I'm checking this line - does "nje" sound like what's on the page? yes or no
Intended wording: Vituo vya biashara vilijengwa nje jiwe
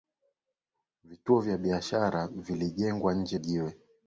yes